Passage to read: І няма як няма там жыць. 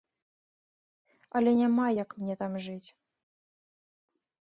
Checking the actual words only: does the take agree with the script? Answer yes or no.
no